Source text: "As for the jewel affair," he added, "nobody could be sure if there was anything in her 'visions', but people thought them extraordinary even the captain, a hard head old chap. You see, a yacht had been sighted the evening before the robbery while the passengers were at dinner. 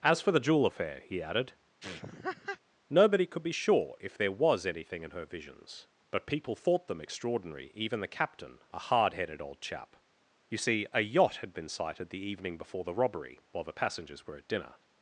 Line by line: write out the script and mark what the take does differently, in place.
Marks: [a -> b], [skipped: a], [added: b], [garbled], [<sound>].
"As for the jewel affair," he added, [laugh] "nobody could be sure if there was anything in her 'visions', but people thought them extraordinary even the captain, a hard [head -> headed] old chap. You see, a yacht had been sighted the evening before the robbery while the passengers were at dinner.